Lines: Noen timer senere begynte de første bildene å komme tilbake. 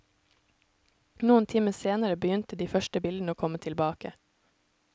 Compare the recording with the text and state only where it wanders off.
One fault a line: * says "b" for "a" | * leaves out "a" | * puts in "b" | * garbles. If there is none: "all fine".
all fine